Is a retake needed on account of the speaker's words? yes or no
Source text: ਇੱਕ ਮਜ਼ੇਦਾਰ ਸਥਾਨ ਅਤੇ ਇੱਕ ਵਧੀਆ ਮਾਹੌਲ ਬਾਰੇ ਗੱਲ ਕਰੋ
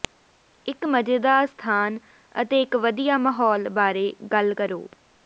no